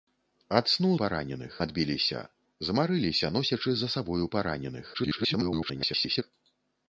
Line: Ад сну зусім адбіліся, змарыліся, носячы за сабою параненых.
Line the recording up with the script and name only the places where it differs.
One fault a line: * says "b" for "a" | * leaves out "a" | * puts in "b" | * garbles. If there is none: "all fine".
* says "параненых" for "зусім"
* garbles